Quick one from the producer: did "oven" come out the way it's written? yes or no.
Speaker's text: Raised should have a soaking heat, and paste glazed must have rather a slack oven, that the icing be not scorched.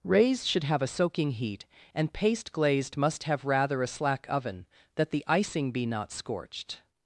yes